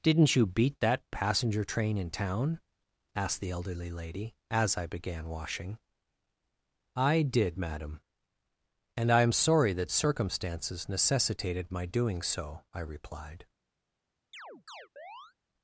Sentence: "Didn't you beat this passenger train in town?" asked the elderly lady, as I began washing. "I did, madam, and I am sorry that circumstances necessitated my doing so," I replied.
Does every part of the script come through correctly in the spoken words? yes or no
no